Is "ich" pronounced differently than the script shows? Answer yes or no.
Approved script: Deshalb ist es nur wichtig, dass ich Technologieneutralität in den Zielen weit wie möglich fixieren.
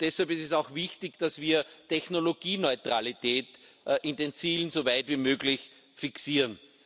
yes